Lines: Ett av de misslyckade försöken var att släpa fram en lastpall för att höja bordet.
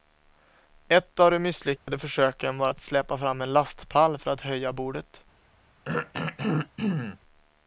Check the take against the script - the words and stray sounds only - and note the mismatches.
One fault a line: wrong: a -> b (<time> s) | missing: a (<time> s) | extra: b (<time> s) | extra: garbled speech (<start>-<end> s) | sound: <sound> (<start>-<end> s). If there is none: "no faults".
sound: dropout (1.8-1.9 s)
sound: throat clearing (5.8-7.2 s)